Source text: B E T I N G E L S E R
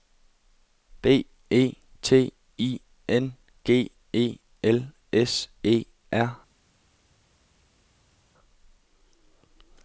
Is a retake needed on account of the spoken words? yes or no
no